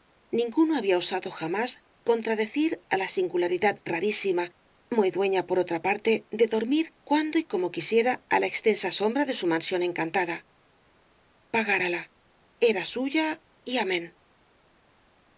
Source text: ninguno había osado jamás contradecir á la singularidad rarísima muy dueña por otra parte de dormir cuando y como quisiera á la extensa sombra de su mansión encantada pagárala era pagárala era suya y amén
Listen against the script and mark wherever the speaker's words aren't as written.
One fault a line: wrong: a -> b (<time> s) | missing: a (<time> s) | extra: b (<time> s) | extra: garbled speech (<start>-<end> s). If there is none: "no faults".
missing: pagárala era (12.8 s)